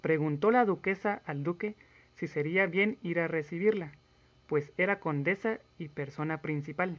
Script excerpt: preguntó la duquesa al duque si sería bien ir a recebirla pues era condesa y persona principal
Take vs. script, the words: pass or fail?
pass